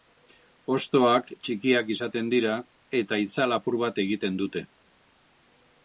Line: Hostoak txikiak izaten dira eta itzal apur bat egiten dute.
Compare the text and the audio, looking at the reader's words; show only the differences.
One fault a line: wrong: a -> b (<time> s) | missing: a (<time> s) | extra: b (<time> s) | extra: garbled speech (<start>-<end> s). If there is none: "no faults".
no faults